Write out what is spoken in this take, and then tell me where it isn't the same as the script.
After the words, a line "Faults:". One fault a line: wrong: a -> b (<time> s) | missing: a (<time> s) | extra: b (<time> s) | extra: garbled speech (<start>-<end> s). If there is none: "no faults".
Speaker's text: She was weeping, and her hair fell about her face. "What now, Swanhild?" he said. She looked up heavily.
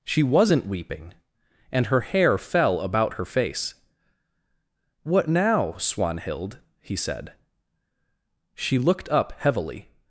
She wasn't weeping, and her hair fell about her face. "What now, Swanhild?" he said. She looked up heavily.
Faults:
wrong: was -> wasn't (0.2 s)